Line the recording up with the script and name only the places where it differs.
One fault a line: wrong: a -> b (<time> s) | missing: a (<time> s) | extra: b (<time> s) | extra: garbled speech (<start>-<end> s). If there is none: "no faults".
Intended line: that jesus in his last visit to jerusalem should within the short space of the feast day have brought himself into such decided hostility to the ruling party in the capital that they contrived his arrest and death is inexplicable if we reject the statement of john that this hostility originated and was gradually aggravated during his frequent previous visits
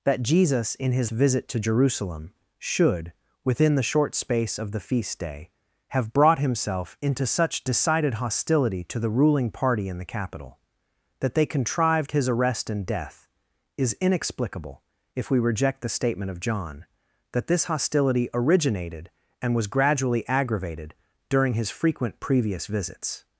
missing: last (1.1 s)